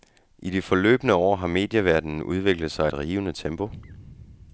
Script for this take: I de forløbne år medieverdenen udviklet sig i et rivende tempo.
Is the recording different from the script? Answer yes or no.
yes